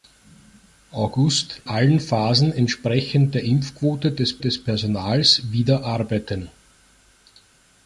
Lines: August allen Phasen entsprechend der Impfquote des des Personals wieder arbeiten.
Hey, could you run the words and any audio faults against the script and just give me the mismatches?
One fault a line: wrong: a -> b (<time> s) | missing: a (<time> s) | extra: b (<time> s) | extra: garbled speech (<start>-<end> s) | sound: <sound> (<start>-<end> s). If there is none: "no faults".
no faults